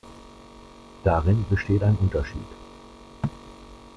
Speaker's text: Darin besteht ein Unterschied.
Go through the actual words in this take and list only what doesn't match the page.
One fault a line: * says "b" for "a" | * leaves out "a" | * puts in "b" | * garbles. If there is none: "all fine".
all fine